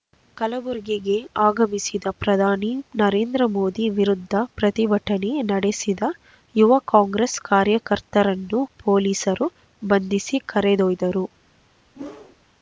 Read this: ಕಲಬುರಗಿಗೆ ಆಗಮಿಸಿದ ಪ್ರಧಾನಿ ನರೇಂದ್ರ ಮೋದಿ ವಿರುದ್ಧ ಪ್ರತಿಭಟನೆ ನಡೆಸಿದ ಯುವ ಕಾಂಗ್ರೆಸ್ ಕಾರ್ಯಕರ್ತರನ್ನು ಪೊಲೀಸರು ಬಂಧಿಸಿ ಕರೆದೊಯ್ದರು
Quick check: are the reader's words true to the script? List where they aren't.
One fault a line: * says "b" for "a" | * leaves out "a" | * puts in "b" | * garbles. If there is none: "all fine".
all fine